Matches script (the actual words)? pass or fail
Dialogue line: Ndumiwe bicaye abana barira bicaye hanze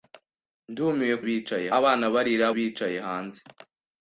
pass